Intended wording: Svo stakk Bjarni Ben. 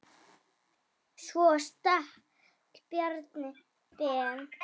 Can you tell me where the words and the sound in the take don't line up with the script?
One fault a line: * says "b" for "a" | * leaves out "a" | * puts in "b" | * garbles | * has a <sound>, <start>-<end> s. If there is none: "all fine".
all fine